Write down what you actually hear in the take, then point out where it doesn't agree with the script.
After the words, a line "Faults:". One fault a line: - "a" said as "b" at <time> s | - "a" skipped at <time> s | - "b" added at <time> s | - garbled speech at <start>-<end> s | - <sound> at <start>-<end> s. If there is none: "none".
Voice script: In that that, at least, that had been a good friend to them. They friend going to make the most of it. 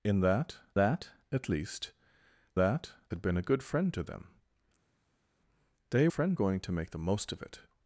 In that that, at least, that had been a good friend to them. They friend going to make the most of it.
Faults:
none